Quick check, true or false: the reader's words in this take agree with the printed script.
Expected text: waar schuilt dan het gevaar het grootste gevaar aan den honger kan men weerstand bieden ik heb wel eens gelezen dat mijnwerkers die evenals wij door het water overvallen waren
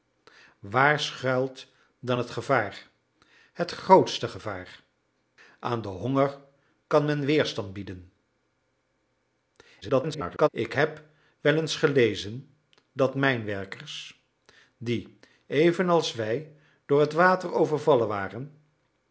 false